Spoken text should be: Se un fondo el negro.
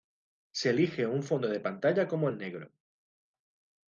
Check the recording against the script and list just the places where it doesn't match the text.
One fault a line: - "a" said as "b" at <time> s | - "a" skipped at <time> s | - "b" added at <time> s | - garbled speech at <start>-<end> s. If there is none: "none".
- "elige" added at 0.7 s
- "de pantalla como" added at 1.5 s